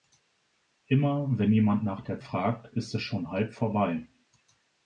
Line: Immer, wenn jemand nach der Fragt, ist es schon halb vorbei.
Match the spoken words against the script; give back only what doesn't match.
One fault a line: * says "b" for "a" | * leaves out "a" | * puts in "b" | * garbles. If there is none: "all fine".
all fine